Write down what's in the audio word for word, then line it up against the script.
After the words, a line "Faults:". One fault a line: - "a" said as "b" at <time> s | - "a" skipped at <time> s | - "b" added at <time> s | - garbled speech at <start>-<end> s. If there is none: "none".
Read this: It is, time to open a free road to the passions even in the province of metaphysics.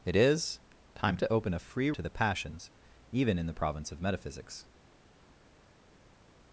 It is, time to open a free to the passions even in the province of metaphysics.
Faults:
- "road" skipped at 1.9 s